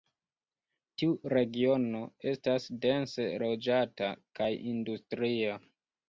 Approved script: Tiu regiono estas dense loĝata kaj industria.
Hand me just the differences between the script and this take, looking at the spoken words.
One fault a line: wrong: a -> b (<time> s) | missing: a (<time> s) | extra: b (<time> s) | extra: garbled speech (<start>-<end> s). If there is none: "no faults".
no faults